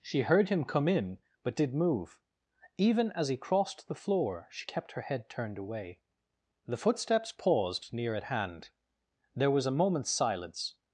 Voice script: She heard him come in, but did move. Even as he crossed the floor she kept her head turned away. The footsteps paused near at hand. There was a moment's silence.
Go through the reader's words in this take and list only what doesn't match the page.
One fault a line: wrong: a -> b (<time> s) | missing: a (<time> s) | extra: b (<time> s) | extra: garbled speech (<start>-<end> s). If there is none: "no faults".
no faults